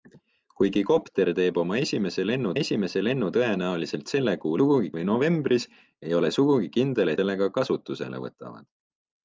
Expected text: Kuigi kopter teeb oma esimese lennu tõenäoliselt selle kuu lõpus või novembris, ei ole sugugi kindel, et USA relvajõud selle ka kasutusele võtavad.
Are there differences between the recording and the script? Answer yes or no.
yes